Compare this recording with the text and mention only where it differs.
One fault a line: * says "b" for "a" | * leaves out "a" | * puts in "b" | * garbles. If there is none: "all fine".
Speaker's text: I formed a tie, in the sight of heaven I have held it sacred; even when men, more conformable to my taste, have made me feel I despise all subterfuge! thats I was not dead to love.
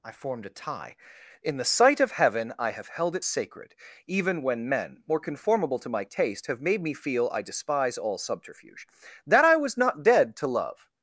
* says "that" for "thats"